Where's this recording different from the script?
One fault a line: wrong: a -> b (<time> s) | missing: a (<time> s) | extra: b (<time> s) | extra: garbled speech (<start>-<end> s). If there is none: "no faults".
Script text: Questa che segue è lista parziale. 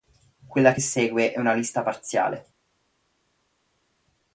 wrong: Questa -> Quella (0.5 s)
extra: una (1.4 s)